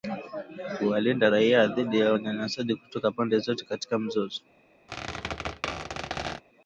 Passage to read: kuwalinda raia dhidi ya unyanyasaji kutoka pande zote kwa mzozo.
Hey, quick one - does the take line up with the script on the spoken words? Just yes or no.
no